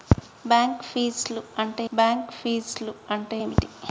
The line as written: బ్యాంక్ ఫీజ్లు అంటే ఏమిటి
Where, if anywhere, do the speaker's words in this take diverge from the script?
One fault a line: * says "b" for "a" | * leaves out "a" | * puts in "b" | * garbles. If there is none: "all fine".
* puts in "బ్యాంక్ ఫీజ్లు అంటే"